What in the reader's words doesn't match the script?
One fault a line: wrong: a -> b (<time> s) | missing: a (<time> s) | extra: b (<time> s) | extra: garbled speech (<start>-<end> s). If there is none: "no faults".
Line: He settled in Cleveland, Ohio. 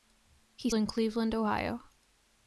missing: settled (0.7 s)